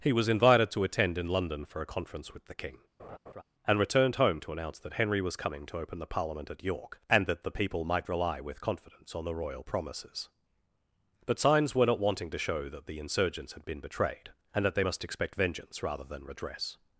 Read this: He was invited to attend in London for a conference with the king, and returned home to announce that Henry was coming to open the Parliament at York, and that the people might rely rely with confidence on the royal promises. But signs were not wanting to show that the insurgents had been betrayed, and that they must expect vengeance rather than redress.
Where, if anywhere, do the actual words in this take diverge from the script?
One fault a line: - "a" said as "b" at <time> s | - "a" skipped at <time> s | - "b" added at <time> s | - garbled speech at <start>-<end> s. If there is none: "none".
- "rely" skipped at 8.4 s